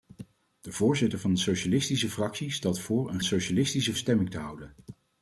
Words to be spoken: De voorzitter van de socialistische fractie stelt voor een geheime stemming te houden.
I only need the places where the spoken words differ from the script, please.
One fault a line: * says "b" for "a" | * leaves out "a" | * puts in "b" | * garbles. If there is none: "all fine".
* says "socialistische" for "geheime"